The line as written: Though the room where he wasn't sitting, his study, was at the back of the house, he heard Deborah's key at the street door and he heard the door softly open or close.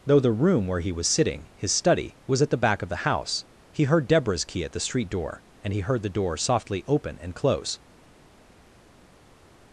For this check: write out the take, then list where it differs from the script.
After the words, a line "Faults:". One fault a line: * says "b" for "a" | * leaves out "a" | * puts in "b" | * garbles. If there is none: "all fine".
Though the room where he was sitting, his study, was at the back of the house, he heard Deborah's key at the street door and he heard the door softly open and close.
Faults:
* says "was" for "wasn't"
* says "and" for "or"